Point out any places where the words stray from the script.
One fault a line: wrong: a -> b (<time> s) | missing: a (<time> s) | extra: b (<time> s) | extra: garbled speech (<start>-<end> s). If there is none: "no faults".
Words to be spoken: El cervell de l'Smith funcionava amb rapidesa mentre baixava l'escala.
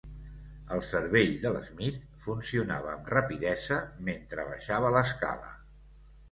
no faults